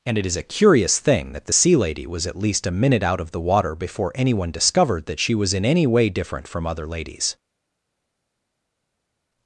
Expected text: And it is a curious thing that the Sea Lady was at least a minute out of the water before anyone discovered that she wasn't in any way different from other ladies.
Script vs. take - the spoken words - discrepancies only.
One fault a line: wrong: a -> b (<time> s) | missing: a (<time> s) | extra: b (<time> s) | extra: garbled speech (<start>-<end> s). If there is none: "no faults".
wrong: wasn't -> was (5.3 s)